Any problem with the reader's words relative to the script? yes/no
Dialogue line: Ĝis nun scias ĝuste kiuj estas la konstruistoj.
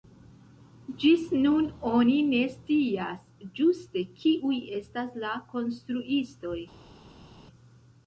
yes